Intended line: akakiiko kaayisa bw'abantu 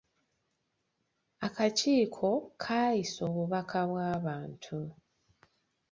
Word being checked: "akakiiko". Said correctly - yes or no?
yes